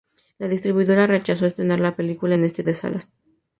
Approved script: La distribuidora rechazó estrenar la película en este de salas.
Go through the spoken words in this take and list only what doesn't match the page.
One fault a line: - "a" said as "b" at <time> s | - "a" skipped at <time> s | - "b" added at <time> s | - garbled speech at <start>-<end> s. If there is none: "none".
none